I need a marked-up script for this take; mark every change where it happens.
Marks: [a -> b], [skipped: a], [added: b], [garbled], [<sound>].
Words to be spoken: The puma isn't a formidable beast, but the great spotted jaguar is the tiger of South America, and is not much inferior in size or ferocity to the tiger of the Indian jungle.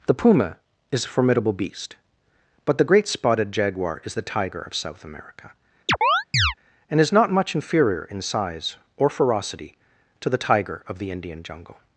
The puma [isn't -> is] a formidable beast, but the great spotted jaguar is the tiger of South America, [chirp] and is not much inferior in size or ferocity to the tiger of the Indian jungle.